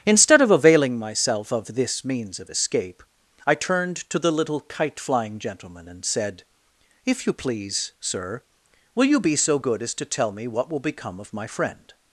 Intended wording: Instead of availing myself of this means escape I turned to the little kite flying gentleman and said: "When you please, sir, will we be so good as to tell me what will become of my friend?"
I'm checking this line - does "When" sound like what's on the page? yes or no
no